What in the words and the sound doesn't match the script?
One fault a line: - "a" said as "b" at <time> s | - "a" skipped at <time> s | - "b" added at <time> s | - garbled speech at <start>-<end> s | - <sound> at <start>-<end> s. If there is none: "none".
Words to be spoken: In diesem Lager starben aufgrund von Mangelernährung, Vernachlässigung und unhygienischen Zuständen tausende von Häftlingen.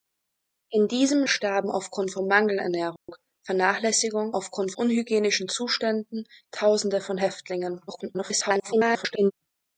- "Lager" skipped at 1.2 s
- dropout at 3.0-3.1 s
- "und" said as "aufgrund" at 4.3 s
- garbled speech at 7.9-9.3 s